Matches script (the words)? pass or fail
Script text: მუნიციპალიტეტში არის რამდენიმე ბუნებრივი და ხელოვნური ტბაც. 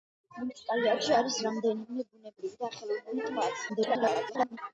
fail